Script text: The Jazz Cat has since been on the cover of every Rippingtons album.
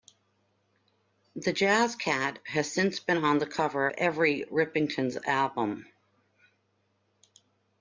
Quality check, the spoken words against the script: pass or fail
fail